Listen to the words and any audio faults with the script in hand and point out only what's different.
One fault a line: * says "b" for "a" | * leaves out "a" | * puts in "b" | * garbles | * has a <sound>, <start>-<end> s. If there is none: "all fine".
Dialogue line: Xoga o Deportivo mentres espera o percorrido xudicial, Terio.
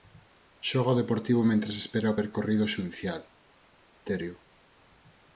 all fine